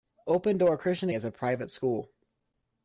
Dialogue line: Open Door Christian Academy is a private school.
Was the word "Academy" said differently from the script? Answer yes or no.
yes